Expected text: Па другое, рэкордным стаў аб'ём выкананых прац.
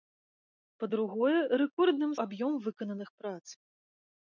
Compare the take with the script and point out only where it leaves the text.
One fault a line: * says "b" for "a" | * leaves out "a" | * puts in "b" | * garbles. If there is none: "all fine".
* leaves out "стаў"